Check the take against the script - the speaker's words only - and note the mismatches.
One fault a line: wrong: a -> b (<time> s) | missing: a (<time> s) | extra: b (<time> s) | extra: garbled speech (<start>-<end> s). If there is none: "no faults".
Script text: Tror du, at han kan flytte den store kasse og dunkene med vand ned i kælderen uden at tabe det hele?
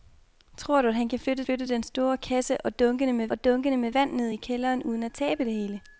extra: flytte (1.4 s)
extra: og dunkene med (3.3 s)